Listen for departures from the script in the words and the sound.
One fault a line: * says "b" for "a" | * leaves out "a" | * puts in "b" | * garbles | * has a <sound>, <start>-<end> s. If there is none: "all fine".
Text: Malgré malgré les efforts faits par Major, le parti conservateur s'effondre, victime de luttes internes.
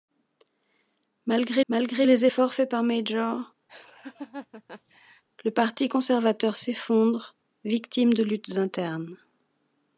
* has a laugh, 3.7-5.2 s